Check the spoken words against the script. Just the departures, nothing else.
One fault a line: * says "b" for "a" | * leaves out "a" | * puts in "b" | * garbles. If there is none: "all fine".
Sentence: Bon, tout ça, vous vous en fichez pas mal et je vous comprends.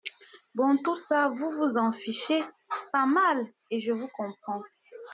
all fine